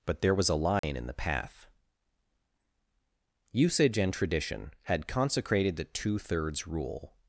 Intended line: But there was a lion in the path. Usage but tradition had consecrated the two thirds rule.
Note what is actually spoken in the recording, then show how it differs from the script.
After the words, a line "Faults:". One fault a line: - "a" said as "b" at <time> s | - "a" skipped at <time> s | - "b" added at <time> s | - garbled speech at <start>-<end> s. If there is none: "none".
But there was a lion in the path. Usage and tradition had consecrated the two thirds rule.
Faults:
- "but" said as "and" at 4.0 s